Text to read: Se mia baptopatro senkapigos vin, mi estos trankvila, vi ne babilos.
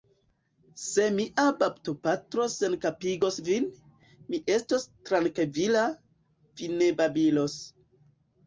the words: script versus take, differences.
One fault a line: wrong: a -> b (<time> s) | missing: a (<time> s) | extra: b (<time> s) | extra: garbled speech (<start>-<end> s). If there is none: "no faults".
no faults